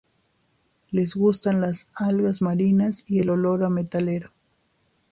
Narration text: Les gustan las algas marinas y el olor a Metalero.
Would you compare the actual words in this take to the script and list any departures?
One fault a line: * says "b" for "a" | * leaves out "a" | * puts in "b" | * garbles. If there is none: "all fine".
all fine